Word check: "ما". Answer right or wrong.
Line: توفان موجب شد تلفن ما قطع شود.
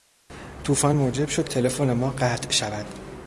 right